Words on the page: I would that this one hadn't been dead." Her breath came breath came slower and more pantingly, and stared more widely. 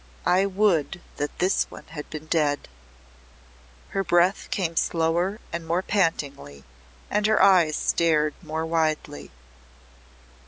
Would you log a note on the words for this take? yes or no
yes